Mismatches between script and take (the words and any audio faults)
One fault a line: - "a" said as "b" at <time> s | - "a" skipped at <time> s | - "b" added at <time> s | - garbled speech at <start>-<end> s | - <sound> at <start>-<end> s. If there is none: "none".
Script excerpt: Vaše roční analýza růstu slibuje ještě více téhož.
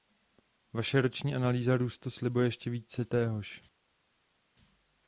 none